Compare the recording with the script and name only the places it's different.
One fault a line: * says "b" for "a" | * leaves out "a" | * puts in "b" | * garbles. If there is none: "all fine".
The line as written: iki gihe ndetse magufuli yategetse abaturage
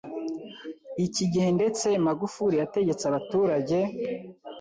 all fine